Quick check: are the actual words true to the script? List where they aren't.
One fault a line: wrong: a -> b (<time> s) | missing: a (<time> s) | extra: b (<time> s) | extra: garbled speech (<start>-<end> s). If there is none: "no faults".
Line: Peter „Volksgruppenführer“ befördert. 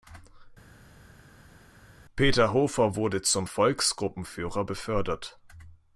extra: Hofer wurde zum (2.5 s)